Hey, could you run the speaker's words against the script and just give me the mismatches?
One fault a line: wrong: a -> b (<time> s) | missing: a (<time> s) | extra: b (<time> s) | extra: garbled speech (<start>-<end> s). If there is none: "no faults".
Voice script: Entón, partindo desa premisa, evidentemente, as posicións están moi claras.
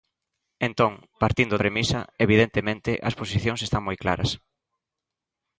missing: desa (1.6 s)